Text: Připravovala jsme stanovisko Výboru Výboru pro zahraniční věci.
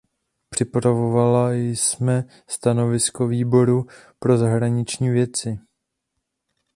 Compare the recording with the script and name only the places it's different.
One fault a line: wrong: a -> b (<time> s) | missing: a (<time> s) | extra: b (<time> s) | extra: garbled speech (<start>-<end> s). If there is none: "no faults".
missing: Výboru (3.9 s)